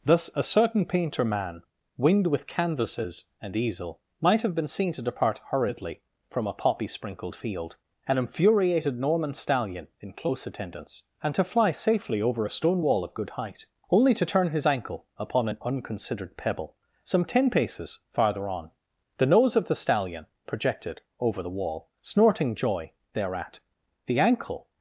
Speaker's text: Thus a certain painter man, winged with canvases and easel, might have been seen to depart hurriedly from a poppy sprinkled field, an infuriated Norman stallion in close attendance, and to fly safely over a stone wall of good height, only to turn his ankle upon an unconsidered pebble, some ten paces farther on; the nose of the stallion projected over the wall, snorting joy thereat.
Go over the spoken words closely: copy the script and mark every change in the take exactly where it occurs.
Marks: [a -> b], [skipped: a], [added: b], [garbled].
Thus a certain painter man, winged with canvases and easel, might have been seen to depart hurriedly from a poppy sprinkled field, an infuriated Norman stallion in close attendance, and to fly safely over a stone wall of good height, only to turn his ankle upon an unconsidered pebble, some ten paces farther on; the nose of the stallion projected over the wall, snorting joy thereat. [added: The ankle]